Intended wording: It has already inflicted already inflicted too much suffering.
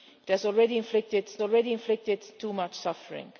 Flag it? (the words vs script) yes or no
no